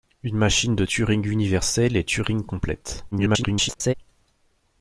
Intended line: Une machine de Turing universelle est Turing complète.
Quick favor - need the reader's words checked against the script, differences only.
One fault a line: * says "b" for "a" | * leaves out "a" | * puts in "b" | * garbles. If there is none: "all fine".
* garbles